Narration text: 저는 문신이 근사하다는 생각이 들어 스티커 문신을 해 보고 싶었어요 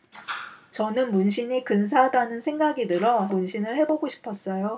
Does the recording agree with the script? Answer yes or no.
no